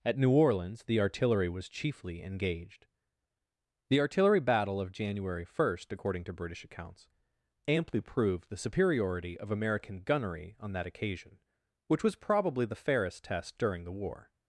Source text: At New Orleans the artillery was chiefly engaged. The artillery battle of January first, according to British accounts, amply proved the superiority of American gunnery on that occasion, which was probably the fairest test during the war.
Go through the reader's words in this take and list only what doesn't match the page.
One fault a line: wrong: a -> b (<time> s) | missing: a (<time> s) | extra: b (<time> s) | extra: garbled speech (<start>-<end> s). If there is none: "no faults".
no faults